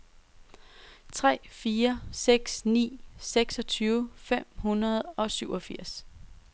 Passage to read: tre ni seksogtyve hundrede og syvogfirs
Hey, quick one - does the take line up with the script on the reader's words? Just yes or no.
no